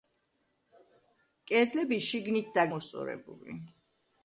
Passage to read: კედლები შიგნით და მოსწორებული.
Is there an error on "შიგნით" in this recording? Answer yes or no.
no